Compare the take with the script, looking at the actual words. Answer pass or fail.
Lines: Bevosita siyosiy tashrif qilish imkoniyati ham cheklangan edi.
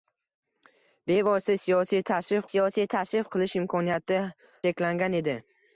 fail